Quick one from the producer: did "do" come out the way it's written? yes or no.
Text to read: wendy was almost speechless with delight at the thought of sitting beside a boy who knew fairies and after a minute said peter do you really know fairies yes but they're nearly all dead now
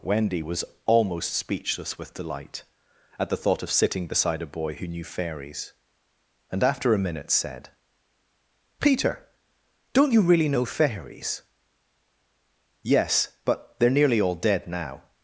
no